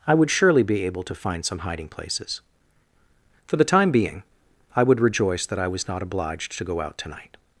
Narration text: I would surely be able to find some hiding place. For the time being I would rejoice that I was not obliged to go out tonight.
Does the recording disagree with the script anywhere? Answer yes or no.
yes